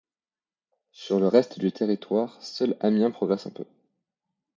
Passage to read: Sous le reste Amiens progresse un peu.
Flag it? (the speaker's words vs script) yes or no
yes